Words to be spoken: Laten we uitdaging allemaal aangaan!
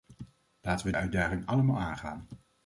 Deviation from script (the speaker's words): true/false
false